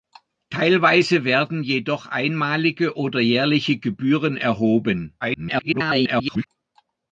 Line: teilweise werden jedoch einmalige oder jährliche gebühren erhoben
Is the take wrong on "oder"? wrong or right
right